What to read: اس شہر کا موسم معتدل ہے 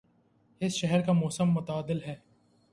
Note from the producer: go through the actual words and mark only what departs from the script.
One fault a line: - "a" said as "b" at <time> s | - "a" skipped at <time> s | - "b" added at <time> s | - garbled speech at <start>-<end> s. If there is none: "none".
none